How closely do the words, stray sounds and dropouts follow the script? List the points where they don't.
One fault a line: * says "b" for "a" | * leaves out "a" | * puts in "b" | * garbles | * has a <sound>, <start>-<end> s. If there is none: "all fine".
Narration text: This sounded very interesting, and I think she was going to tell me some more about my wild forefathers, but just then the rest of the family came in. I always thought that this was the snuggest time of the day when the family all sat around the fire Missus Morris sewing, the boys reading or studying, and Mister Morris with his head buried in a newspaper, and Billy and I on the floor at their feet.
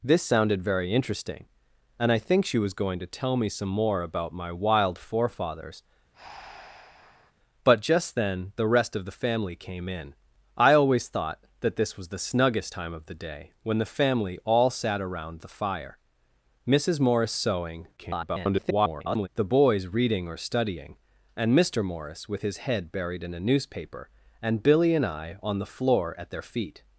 * has a breath, 6.1-7.3 s
* garbles